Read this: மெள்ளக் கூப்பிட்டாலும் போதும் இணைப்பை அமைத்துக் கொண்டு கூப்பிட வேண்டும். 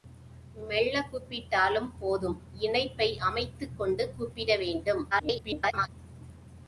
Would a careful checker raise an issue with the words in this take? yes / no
yes